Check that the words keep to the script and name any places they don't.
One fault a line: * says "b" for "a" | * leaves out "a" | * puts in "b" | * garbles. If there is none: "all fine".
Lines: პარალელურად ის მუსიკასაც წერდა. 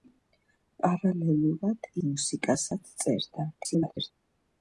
* leaves out "ის"
* garbles